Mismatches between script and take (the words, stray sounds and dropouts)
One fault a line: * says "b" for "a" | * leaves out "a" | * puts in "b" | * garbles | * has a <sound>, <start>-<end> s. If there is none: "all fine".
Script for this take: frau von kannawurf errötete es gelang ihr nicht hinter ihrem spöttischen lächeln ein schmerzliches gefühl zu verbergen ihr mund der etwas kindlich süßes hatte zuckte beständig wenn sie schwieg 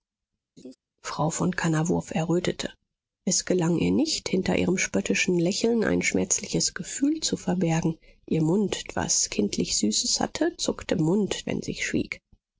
* has a laugh, 0.6-0.8 s
* leaves out "der"
* says "mund" for "beständig"